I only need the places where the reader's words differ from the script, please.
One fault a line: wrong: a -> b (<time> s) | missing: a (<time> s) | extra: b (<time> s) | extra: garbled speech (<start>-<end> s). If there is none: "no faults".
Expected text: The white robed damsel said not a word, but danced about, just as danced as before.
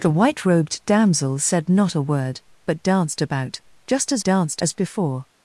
no faults